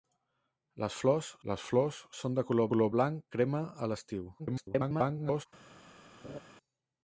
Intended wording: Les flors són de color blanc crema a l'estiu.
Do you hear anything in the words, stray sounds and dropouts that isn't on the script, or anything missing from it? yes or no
yes